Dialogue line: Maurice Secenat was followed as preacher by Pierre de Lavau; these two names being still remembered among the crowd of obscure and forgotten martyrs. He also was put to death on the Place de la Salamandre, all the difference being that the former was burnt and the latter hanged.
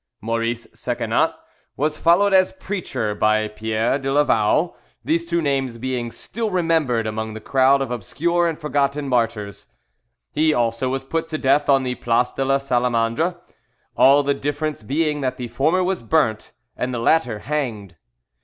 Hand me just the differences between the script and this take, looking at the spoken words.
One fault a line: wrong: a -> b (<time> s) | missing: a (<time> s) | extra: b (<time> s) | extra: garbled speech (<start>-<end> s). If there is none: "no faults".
no faults